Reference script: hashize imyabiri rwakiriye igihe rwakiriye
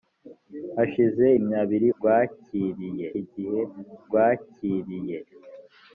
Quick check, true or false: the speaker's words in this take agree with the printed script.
true